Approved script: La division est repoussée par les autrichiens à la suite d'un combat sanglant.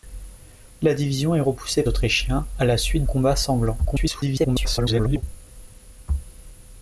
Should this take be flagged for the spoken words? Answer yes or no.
yes